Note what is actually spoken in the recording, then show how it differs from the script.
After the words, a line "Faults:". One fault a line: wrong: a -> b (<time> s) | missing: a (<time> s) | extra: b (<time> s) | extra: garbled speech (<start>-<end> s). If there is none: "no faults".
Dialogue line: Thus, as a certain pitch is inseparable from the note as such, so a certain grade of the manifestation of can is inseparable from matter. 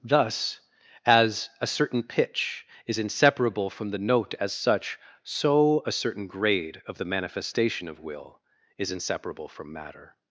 Thus, as a certain pitch is inseparable from the note as such, so a certain grade of the manifestation of will is inseparable from matter.
Faults:
wrong: can -> will (8.0 s)